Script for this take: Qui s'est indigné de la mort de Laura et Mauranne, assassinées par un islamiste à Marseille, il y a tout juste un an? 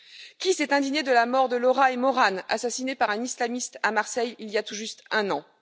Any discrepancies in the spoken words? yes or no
no